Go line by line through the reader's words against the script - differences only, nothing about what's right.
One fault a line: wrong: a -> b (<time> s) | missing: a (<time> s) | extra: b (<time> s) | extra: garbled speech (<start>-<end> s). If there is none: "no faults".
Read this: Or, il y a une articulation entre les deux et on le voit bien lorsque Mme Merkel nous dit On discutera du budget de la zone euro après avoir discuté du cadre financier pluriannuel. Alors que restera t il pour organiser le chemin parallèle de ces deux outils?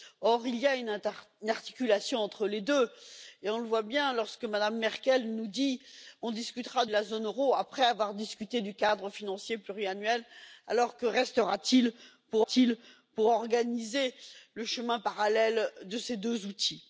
missing: du budget (6.8 s)
extra: t il pour (12.4 s)